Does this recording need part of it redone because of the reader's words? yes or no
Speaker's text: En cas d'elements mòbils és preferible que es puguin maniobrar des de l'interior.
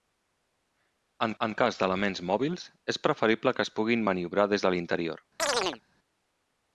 yes